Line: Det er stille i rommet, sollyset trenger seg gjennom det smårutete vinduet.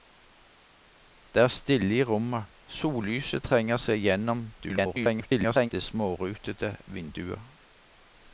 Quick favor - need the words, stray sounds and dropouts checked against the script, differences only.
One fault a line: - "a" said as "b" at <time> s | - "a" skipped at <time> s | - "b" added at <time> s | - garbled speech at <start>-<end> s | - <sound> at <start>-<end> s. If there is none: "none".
- garbled speech at 4.6-5.7 s